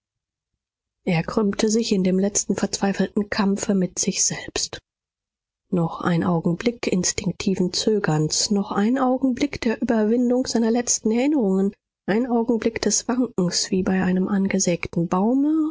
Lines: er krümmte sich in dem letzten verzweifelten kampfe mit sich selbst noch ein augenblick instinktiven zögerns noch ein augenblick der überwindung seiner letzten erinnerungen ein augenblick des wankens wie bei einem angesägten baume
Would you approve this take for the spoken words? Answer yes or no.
yes